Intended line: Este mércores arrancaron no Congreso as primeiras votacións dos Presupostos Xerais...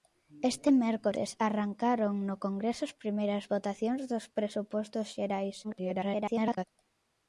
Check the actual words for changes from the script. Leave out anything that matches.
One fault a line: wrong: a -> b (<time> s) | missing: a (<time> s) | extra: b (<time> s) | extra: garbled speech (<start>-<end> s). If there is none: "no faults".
extra: garbled speech (5.6-6.6 s)